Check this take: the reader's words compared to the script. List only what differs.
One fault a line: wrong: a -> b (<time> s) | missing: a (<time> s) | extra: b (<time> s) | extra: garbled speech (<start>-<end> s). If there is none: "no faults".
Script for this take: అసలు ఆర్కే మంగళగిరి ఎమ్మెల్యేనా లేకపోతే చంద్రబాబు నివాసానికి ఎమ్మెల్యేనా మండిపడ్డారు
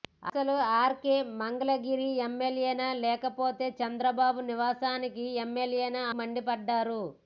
no faults